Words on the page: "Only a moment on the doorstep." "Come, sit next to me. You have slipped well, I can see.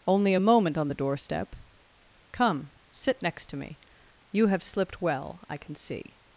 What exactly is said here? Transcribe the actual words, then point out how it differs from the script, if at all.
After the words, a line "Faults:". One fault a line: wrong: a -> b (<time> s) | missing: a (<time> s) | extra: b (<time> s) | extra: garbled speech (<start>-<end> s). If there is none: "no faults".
"Only a moment on the doorstep." "Come, sit next to me. You have slipped well, I can see.
Faults:
no faults